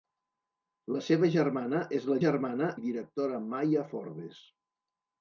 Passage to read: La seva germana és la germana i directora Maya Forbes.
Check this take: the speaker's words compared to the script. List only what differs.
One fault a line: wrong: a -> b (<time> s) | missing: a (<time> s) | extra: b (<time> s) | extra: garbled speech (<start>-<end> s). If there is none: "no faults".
no faults